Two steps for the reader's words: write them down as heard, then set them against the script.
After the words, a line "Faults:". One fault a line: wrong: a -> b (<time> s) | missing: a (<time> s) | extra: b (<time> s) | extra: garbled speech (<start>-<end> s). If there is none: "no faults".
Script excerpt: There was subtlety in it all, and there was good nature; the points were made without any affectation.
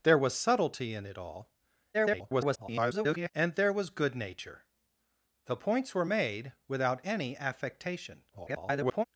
There was subtlety in it all, [garbled] and there was good nature; the points were made without any affectation. [garbled]
Faults:
extra: garbled speech (1.9-3.3 s)
extra: garbled speech (8.3-9.0 s)